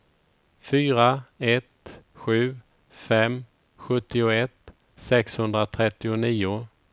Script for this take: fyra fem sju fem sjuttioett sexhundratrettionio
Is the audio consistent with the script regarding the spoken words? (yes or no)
no